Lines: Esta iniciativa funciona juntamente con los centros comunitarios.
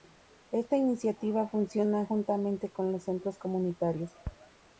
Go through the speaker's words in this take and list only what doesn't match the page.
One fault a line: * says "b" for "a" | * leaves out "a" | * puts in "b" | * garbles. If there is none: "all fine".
all fine